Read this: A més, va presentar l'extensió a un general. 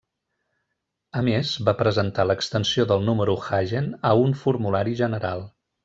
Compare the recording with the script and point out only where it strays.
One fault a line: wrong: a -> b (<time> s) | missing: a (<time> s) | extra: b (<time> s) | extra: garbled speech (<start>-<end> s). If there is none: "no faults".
extra: del número Hagen (2.9 s)
extra: formulari (4.5 s)